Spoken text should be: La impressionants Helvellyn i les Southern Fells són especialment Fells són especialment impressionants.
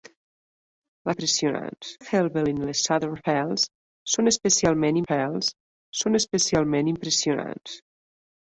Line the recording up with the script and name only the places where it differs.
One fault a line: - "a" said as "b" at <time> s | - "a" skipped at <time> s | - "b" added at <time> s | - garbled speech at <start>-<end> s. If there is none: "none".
none